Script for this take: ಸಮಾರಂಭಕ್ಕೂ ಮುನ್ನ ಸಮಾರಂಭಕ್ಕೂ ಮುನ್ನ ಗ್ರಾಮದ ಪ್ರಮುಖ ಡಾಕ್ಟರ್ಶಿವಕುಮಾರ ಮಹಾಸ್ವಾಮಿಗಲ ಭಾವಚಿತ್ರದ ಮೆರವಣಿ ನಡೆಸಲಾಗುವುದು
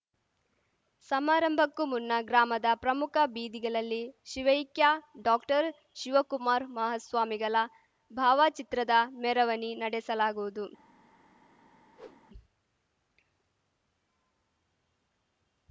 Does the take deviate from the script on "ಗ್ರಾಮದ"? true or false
true